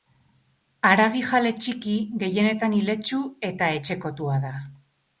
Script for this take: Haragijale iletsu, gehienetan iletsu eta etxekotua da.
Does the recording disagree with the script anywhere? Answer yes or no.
yes